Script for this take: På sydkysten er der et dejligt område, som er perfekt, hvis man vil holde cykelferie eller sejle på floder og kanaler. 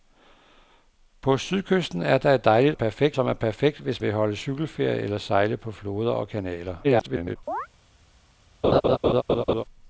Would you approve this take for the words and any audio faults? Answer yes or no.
no